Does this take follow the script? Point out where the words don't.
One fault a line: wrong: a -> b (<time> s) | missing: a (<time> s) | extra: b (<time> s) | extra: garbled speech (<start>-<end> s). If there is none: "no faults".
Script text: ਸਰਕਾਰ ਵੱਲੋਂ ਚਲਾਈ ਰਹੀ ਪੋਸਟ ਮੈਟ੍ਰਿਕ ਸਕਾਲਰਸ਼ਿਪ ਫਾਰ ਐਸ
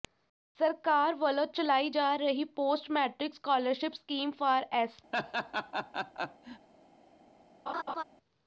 extra: ਜਾ (1.9 s)
extra: ਸਕੀਮ (3.9 s)